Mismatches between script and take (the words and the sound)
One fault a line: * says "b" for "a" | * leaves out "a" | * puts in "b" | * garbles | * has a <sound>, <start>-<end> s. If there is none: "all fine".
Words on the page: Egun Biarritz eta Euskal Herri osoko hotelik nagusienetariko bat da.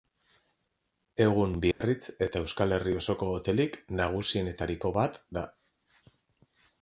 * has a dropout, 1.7-1.8 s